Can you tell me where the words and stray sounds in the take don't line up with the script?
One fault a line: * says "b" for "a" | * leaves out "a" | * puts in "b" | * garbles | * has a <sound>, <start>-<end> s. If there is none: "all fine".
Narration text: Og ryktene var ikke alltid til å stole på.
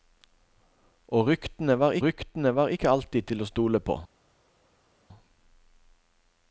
* puts in "ryktene var"